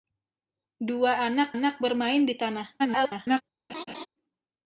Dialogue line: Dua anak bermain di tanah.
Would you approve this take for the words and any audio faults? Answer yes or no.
no